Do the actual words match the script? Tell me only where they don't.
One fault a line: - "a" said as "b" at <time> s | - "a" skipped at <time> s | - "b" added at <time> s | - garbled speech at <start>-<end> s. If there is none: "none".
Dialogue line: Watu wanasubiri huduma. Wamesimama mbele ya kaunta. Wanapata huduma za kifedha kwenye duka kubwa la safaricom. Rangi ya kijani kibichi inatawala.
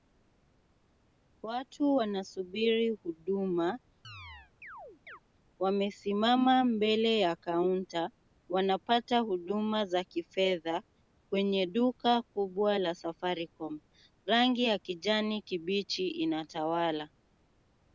none